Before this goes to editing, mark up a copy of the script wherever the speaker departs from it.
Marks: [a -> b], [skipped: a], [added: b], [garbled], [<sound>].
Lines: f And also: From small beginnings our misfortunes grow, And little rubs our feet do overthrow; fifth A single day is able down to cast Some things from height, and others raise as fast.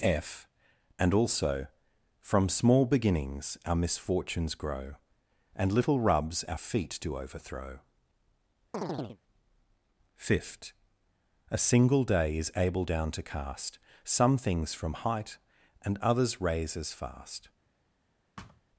f And also: From small beginnings our misfortunes grow, And little rubs our feet do overthrow; [chirp] fifth A single day is able down to cast Some things from height, and others raise as fast. [thud]